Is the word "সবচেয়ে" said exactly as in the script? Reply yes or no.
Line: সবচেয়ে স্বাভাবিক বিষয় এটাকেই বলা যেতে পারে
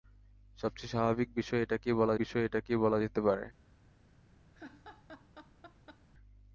yes